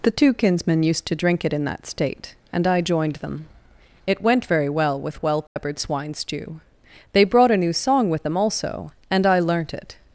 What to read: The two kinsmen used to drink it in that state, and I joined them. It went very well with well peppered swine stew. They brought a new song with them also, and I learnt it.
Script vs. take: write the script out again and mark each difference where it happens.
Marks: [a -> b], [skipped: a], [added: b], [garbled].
The two kinsmen used to drink it in that state, and I joined them. It went very well with well peppered swine stew. They brought a new song with them also, and I learnt it.